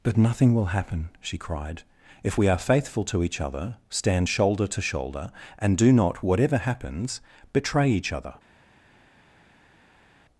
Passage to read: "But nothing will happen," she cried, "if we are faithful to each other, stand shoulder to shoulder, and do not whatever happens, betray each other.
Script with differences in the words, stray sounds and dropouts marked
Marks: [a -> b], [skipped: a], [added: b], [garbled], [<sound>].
"But nothing will happen," she cried, "if we are faithful to each other, stand shoulder to shoulder, and do not whatever happens, betray each other.